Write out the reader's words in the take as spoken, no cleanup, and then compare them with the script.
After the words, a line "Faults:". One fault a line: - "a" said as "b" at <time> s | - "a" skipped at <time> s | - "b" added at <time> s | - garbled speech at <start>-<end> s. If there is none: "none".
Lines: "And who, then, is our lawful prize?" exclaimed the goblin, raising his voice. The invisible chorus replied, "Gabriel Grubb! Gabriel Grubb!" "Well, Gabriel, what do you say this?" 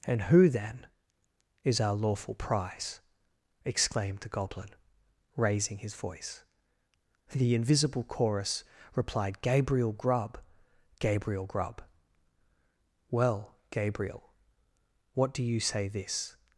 "And who, then, is our lawful prize?" exclaimed the goblin, raising his voice. The invisible chorus replied, "Gabriel Grubb! Gabriel Grubb!" "Well, Gabriel, what do you say this?"
Faults:
none